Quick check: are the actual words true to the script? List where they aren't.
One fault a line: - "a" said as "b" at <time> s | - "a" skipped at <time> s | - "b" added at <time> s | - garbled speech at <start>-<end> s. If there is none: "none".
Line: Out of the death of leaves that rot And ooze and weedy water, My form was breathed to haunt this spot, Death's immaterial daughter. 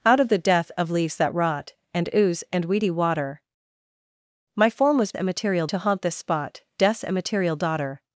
- "breathed" said as "immaterial" at 5.2 s